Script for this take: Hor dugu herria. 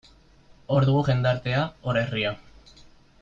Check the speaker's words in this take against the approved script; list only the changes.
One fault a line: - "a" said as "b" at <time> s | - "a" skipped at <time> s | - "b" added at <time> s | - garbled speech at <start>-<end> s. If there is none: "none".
- "jendartea hor" added at 1.1 s